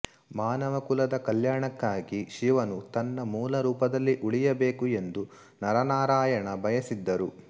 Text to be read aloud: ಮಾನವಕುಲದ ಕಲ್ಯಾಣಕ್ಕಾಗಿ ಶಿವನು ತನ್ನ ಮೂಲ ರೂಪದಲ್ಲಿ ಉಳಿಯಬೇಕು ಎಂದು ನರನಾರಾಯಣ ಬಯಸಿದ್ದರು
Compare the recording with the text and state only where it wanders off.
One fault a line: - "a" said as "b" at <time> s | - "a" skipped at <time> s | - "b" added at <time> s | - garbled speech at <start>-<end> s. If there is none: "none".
none